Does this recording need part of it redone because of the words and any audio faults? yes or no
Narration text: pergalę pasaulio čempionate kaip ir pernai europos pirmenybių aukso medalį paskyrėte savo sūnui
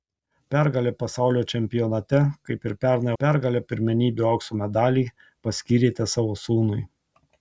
yes